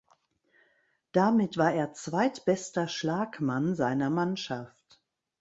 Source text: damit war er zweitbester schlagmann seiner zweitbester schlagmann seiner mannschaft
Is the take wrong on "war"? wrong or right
right